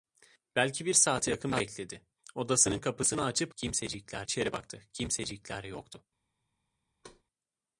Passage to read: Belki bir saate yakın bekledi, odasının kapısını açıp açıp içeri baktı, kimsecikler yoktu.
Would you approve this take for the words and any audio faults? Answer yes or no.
no